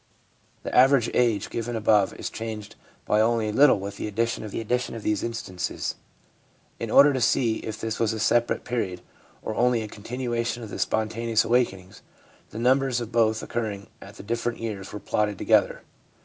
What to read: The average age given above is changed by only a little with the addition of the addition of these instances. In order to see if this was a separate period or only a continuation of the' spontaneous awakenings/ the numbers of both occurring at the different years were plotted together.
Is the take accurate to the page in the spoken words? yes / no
yes